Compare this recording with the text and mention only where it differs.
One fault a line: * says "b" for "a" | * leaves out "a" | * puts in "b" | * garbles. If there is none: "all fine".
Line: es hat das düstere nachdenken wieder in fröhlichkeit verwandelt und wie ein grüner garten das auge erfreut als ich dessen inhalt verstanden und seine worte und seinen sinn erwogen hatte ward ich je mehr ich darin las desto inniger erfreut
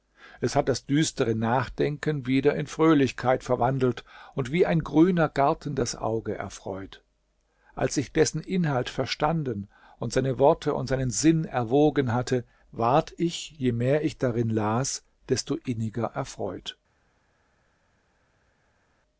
all fine